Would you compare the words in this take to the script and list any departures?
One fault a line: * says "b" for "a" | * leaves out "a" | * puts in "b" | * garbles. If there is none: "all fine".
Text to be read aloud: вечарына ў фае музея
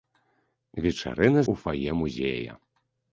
all fine